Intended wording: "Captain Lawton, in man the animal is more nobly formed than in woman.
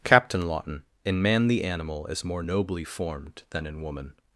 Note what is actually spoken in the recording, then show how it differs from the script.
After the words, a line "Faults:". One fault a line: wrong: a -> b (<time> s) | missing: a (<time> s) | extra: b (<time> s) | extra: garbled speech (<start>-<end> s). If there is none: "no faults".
"Captain Lawton, in man the animal is more nobly formed than in woman.
Faults:
no faults